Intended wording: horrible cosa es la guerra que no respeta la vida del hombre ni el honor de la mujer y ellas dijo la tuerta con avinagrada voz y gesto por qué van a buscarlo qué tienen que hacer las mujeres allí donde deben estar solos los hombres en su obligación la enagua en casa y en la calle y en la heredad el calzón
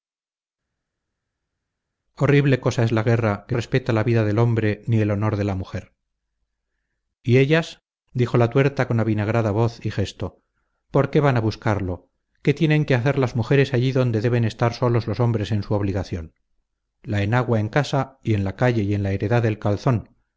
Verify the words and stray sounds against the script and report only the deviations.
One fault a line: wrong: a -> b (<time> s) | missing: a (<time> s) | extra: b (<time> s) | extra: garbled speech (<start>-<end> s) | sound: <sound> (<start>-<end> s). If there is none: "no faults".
missing: no (3.5 s)